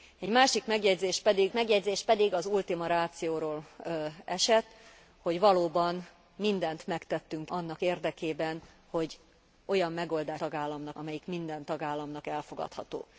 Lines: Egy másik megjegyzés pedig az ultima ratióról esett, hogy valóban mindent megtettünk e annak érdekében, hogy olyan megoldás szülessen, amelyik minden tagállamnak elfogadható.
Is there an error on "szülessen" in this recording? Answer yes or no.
yes